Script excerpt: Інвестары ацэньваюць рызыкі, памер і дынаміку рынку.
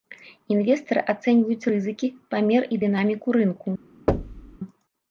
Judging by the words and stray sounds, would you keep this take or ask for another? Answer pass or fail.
fail